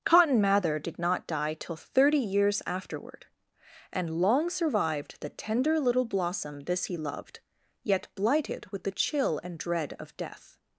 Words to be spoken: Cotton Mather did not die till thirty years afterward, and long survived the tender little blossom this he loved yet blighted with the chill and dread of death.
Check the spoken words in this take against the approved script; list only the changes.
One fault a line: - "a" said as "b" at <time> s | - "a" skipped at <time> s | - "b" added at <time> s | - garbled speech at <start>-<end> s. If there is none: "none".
none